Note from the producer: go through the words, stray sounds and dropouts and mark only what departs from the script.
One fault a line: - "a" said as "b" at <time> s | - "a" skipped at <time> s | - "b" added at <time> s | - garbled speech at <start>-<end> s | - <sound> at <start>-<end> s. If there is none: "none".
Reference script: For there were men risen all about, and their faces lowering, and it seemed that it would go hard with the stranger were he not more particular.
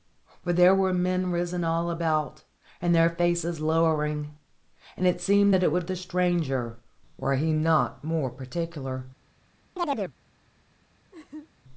- "go hard with" skipped at 5.9 s
- chirp at 9.8-10.2 s
- laugh at 11.1-11.5 s